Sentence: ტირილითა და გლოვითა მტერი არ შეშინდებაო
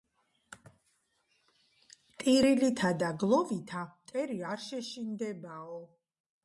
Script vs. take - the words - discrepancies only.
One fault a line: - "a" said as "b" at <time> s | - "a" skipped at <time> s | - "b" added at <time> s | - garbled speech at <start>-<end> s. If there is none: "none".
none